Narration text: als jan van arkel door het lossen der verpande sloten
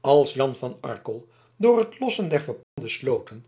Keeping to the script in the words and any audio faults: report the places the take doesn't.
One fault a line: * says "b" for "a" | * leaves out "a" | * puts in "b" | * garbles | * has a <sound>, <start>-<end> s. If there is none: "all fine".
* has a dropout, 2.6-2.8 s